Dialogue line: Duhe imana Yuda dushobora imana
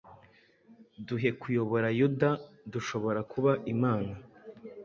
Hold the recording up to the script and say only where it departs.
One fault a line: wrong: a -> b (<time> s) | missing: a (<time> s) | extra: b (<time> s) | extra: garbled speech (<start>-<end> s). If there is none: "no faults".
wrong: imana -> kuyobora (1.4 s)
extra: kuba (3.3 s)